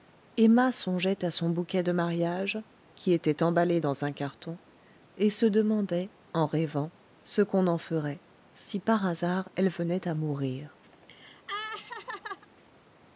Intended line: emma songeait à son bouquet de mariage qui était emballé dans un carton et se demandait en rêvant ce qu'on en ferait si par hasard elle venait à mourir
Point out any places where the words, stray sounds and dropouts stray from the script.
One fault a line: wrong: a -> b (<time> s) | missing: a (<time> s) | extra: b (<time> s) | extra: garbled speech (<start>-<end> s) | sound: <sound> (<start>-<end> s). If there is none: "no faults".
sound: laugh (10.9-12.5 s)